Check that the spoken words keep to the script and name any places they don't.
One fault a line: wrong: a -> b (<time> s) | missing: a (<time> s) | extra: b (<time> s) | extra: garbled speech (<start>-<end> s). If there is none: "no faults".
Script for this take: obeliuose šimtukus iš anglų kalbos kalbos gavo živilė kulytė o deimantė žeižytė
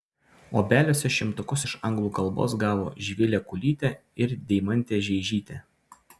missing: kalbos (2.5 s)
wrong: o -> ir (4.3 s)